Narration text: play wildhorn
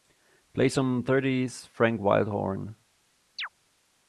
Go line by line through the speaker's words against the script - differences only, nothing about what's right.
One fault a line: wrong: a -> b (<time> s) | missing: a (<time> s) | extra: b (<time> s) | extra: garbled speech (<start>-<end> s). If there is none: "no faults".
extra: some thirties frank (0.7 s)